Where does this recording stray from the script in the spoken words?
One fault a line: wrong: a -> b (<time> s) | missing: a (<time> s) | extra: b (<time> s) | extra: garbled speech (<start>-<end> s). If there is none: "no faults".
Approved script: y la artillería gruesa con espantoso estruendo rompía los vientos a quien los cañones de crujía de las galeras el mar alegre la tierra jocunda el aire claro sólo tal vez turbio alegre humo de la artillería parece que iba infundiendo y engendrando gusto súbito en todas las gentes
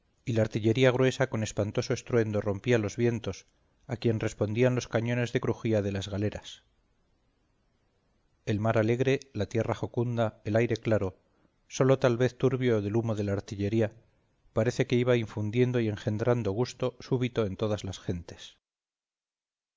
extra: respondían (4.2 s)
wrong: alegre -> del (12.8 s)